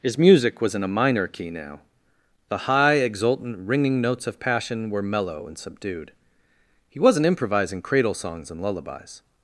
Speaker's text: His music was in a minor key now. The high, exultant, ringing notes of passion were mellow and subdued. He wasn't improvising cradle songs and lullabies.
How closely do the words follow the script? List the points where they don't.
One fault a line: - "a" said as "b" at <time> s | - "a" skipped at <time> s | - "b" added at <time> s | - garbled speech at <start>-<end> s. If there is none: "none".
none